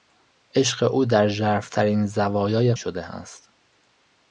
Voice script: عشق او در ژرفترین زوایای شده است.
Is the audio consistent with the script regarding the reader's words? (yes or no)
yes